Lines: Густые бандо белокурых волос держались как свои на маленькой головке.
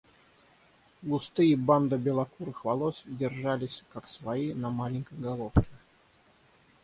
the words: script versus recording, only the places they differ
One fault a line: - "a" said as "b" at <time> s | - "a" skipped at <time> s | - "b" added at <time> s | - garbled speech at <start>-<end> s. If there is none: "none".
none